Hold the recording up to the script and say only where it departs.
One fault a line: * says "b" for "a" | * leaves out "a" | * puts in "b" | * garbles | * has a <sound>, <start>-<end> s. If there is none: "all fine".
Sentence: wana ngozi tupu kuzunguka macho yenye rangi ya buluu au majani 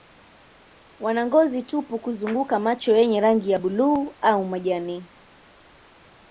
all fine